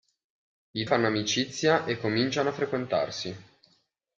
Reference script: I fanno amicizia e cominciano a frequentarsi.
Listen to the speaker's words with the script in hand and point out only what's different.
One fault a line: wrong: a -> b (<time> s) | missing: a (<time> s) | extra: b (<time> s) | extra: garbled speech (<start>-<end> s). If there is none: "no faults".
no faults